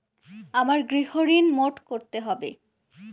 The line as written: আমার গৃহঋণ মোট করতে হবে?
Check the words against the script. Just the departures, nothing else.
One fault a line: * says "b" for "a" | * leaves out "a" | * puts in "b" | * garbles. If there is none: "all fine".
all fine